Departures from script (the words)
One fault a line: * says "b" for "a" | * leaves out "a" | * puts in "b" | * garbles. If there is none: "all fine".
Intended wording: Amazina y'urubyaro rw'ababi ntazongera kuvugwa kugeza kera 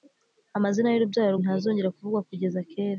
* leaves out "rw'ababi"